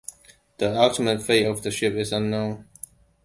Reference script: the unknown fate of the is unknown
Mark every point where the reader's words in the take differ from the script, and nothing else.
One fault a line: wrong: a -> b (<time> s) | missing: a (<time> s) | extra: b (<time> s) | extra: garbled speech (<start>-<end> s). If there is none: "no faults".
wrong: unknown -> ultimate (0.8 s)
extra: ship (1.7 s)